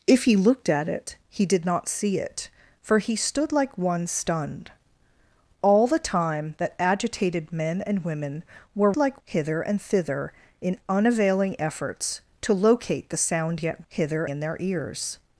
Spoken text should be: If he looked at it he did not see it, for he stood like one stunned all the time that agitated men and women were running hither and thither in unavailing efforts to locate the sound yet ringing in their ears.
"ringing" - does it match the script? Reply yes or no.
no